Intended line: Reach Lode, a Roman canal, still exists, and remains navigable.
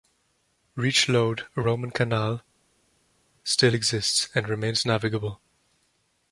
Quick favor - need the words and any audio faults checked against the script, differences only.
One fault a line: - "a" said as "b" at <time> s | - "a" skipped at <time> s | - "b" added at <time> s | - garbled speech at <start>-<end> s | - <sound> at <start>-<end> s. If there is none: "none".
none